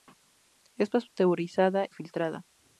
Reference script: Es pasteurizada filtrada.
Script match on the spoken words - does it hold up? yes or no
yes